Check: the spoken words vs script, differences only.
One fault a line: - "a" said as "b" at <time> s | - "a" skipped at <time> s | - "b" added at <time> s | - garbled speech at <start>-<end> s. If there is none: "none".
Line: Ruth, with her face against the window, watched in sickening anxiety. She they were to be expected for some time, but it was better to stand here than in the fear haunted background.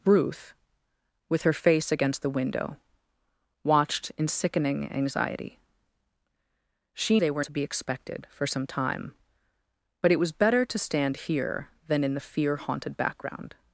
none